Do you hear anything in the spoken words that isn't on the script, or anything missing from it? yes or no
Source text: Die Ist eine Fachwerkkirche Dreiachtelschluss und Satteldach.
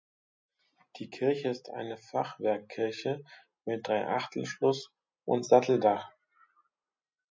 yes